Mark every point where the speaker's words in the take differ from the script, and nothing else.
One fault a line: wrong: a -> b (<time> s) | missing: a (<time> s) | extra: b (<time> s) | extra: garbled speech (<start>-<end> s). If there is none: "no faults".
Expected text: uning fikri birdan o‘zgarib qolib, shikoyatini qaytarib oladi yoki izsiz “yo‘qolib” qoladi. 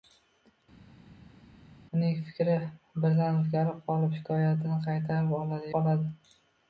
missing: yoki izsiz yo‘qolib (5.7 s)